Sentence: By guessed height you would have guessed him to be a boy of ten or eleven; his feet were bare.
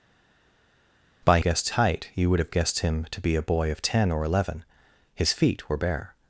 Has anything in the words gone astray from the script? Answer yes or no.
no